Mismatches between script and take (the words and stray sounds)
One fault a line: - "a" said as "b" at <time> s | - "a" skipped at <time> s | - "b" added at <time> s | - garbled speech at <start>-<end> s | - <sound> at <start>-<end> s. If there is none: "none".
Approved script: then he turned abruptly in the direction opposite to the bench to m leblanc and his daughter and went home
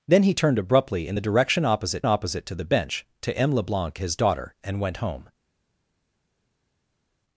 - "opposite" added at 2.0 s
- "and" skipped at 4.0 s